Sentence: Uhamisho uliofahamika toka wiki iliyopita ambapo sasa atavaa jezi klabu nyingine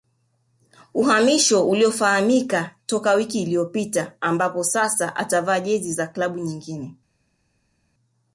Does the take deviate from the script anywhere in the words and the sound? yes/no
yes